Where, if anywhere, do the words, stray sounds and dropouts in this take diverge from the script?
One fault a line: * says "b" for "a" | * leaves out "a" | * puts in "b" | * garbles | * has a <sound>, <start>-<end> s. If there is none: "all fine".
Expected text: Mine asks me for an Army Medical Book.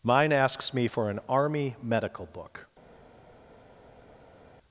all fine